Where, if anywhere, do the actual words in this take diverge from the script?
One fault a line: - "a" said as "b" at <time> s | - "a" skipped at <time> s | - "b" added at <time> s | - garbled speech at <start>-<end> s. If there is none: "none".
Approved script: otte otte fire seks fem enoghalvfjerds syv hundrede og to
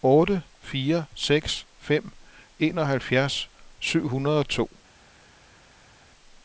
- "otte" skipped at 0.4 s